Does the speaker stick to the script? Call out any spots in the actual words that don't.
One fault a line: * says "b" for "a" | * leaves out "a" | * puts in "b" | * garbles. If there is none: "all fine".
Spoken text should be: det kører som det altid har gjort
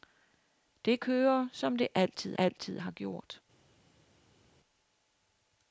* puts in "altid"